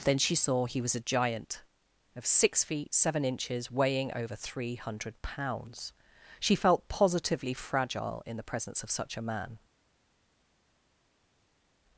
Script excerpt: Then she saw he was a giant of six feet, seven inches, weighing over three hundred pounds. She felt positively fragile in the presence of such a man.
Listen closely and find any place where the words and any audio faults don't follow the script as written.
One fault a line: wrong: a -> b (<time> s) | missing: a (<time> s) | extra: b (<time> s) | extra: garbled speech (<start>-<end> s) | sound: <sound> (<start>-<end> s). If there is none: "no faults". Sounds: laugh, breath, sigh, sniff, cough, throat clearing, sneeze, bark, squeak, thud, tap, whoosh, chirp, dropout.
no faults